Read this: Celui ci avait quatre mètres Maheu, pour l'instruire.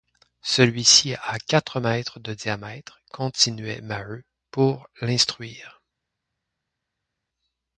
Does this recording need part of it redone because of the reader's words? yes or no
yes